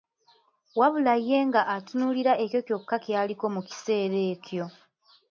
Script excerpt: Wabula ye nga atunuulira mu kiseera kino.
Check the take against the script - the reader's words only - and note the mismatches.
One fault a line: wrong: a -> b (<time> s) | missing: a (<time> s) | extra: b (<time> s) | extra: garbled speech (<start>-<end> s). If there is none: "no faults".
extra: ekyo kyokka ky'aliko (2.4 s)
wrong: kino -> ekyo (4.3 s)